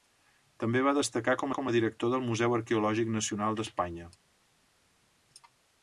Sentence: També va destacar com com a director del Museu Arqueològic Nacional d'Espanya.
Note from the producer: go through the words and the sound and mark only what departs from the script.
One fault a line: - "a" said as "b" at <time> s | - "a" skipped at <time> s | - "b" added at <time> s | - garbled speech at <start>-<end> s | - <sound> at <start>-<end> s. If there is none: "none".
none